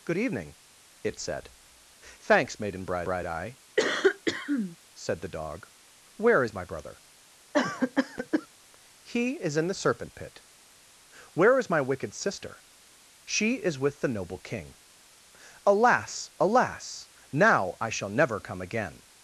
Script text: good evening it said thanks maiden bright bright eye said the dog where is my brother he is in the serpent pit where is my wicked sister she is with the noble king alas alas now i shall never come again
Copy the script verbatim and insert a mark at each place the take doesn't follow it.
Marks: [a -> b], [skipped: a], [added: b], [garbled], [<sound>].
good evening it said thanks maiden bright bright eye [cough] said the dog where is my brother [cough] he is in the serpent pit where is my wicked sister she is with the noble king alas alas now i shall never come again